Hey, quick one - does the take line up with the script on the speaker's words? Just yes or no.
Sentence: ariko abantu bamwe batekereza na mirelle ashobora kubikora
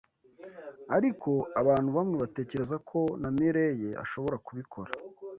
no